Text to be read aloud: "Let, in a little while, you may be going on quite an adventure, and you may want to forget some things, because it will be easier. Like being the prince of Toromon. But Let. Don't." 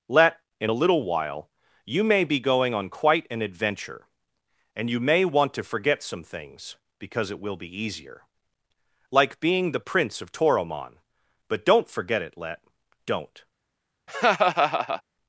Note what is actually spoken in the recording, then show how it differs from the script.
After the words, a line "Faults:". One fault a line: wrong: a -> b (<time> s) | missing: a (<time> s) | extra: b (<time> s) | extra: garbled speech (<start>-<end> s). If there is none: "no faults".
"Let, in a little while, you may be going on quite an adventure, and you may want to forget some things, because it will be easier. Like being the prince of Toromon. But don't forget it, Let. Don't."
Faults:
extra: don't forget it (11.6 s)